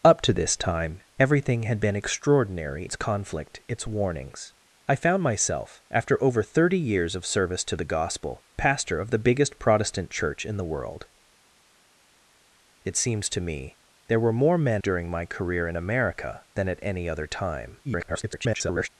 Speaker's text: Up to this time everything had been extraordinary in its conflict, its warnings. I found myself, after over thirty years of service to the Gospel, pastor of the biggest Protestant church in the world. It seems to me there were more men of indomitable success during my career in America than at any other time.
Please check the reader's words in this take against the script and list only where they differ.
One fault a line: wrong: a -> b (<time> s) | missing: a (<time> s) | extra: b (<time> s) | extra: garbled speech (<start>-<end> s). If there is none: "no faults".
missing: in (2.9 s)
missing: of indomitable success (14.8 s)
extra: garbled speech (17.8-18.9 s)